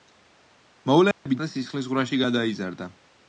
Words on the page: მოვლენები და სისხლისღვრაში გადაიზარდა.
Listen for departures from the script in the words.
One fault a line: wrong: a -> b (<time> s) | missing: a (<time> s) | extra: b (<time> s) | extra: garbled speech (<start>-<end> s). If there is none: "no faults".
no faults